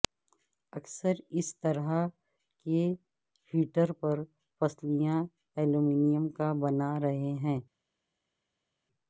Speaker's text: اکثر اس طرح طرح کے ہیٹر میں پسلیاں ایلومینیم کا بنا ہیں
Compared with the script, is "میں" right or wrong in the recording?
wrong